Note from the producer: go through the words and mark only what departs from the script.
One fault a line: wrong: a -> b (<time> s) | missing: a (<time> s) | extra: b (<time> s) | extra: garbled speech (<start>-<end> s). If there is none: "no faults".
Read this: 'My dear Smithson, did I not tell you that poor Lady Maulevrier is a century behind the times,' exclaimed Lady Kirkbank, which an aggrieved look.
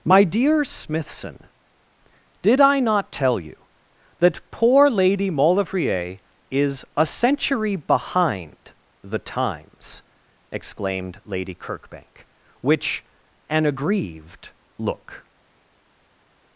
no faults